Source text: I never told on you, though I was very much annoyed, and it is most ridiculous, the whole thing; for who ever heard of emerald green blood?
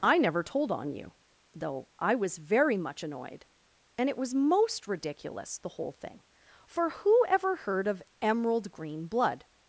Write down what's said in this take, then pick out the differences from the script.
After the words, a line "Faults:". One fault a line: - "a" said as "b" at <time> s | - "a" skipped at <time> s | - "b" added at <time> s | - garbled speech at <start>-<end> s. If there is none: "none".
I never told on you, though I was very much annoyed, and it was most ridiculous, the whole thing; for who ever heard of emerald green blood?
Faults:
- "is" said as "was" at 4.2 s